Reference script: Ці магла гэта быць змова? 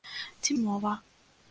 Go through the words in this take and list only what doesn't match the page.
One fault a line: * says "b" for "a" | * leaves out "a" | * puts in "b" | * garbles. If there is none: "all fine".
* leaves out "магла гэта быць"